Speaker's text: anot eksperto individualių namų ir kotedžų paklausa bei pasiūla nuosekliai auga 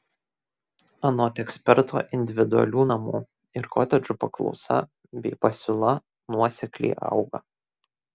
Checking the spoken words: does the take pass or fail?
pass